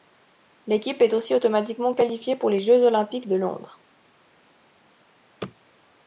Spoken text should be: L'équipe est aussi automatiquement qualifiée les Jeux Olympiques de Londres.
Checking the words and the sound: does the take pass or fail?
fail